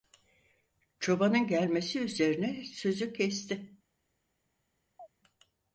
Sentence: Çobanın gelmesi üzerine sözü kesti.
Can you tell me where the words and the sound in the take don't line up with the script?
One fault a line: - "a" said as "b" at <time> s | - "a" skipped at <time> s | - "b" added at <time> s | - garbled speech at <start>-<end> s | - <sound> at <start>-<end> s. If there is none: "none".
- chirp at 5.0-5.1 s